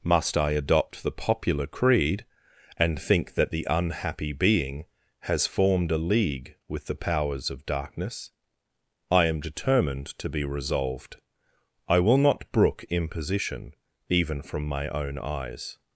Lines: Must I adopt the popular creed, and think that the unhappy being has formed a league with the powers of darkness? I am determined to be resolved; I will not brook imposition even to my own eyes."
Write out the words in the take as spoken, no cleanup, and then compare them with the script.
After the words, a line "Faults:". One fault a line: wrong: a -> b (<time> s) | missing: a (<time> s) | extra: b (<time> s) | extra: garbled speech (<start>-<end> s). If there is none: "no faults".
Must I adopt the popular creed, and think that the unhappy being has formed a league with the powers of darkness? I am determined to be resolved; I will not brook imposition even from my own eyes."
Faults:
wrong: to -> from (14.4 s)